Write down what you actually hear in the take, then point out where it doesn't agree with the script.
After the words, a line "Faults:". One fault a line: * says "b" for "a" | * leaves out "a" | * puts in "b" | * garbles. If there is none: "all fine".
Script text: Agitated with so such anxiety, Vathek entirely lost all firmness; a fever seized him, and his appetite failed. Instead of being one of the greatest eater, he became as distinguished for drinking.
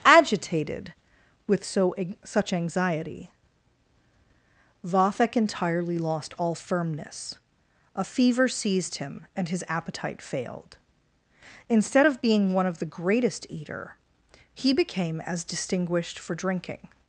Agitated with so such anxiety, Vathek entirely lost all firmness; a fever seized him, and his appetite failed. Instead of being one of the greatest eater, he became as distinguished for drinking.
Faults:
all fine